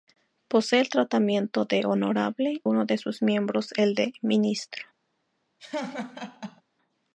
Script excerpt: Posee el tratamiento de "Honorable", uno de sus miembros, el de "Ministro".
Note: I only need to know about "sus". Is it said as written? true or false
true